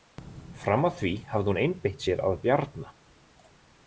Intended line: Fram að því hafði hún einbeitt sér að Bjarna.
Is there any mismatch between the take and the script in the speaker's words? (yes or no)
no